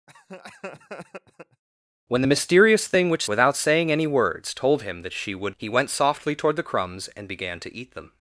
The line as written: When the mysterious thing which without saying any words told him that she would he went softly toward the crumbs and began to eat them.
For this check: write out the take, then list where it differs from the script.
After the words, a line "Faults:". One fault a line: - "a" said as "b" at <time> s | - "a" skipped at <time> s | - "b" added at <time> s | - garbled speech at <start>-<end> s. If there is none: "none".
When the mysterious thing which without saying any words told him that she would he went softly toward the crumbs and began to eat them.
Faults:
none